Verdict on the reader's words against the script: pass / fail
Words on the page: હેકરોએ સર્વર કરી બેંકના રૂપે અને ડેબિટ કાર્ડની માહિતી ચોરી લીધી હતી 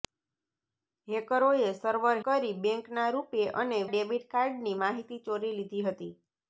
pass